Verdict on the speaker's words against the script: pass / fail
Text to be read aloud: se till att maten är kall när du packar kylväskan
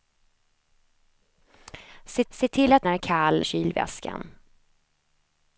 fail